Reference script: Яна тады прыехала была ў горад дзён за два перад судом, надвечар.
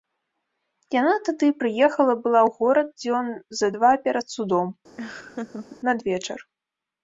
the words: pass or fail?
pass